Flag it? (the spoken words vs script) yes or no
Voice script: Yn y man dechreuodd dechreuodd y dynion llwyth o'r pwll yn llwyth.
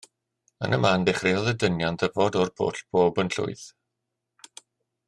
yes